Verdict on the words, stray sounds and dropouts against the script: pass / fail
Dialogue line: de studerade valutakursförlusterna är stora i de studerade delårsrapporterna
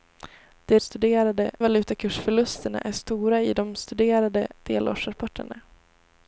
pass